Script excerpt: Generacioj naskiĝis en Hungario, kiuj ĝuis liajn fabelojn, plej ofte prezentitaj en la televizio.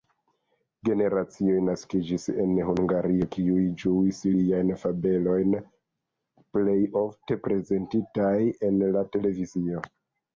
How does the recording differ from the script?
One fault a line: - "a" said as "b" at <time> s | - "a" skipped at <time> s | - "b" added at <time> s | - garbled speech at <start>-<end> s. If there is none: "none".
none